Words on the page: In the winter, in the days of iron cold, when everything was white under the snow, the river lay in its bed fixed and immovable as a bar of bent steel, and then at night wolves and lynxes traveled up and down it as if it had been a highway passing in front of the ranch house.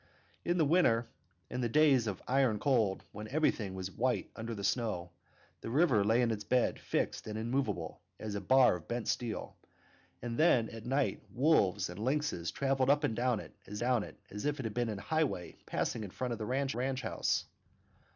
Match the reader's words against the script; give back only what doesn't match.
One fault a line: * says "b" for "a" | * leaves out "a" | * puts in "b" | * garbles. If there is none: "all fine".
* puts in "down it as"
* puts in "ranch"